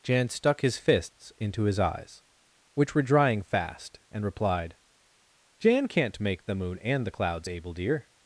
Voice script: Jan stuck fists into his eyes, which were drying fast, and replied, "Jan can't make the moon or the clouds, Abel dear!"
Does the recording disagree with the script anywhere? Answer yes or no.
yes